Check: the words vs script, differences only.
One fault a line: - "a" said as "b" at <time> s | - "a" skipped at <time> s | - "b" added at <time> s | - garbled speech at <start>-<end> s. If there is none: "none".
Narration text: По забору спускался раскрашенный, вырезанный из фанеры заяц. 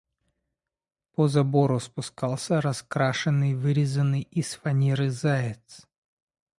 none